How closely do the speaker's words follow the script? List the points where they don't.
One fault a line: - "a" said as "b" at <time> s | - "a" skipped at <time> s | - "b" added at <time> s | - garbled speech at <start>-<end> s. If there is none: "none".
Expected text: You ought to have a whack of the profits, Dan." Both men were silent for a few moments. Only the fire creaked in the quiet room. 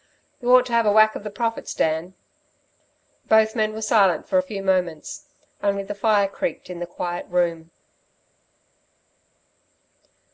none